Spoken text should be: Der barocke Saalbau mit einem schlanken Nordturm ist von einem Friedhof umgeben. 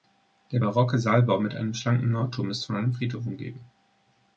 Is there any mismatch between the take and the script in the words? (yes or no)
no